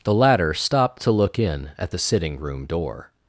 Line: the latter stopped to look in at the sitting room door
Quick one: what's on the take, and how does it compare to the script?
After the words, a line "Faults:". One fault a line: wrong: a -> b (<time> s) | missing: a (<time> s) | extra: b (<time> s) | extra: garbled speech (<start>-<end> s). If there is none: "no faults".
the latter stopped to look in at the sitting room door
Faults:
no faults